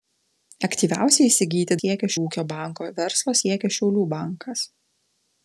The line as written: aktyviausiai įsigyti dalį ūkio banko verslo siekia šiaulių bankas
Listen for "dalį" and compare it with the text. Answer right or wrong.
wrong